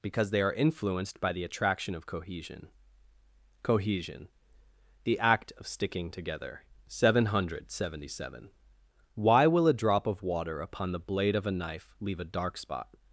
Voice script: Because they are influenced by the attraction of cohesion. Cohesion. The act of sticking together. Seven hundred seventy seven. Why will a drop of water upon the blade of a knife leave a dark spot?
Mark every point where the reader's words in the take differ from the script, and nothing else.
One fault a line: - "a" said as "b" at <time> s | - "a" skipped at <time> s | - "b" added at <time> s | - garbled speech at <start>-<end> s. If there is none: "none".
none